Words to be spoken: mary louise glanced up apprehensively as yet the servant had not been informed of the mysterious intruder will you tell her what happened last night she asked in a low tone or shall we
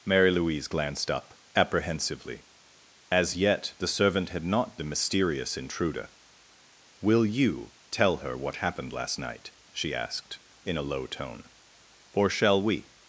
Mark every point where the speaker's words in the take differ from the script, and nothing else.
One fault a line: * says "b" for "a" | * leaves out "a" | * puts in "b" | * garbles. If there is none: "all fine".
* leaves out "been informed of"